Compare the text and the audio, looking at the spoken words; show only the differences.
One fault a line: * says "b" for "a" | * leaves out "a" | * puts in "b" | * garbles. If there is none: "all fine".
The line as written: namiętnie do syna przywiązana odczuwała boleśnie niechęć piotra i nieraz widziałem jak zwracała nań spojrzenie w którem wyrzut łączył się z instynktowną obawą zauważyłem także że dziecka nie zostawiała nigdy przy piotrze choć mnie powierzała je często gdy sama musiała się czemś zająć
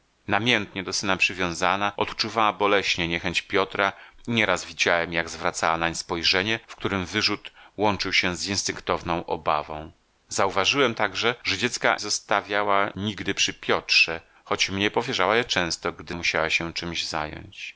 * leaves out "nie"
* leaves out "sama"